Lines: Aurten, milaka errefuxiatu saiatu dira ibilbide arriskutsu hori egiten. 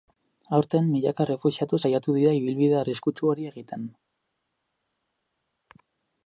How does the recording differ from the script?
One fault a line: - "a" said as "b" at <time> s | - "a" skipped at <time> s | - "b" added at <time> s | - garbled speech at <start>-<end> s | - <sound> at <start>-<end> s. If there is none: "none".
none